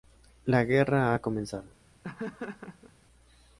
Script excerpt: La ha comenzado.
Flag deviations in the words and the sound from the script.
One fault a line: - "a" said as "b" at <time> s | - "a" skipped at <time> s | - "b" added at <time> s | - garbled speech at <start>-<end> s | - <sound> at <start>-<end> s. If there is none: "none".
- "guerra" added at 0.6 s
- laugh at 2.0-2.9 s